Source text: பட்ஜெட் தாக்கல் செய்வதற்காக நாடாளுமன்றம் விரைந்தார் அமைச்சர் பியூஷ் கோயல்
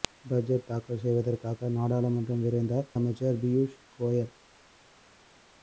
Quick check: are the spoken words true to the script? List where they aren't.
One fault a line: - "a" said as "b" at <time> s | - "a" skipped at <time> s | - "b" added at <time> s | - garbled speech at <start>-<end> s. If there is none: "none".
none